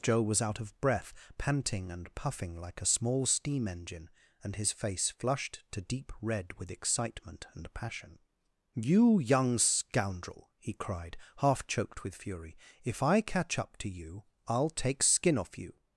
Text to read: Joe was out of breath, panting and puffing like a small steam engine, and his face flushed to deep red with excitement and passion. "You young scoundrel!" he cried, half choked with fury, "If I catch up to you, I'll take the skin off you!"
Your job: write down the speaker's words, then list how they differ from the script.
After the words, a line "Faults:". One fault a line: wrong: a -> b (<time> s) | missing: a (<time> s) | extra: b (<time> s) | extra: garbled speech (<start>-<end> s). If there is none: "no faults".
Joe was out of breath, panting and puffing like a small steam engine, and his face flushed to deep red with excitement and passion. "You young scoundrel!" he cried, half choked with fury, "If I catch up to you, I'll take skin off you!"
Faults:
missing: the (15.0 s)